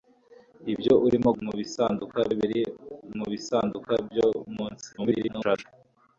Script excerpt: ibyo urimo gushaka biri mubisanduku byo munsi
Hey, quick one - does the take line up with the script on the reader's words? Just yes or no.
no